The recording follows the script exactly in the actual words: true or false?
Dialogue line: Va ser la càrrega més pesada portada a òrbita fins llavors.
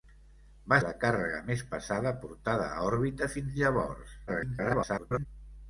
false